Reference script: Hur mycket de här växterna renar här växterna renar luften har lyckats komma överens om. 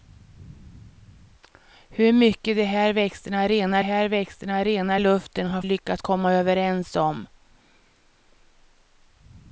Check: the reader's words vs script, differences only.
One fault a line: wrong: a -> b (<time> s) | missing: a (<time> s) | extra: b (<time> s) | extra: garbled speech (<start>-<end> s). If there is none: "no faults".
no faults